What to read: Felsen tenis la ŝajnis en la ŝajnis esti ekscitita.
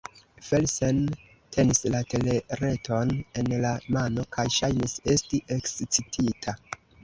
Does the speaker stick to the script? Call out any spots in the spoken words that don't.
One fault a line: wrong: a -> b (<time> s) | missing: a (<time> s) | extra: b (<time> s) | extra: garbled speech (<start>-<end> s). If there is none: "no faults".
wrong: ŝajnis -> telereton (2.1 s)
extra: mano kaj (4.0 s)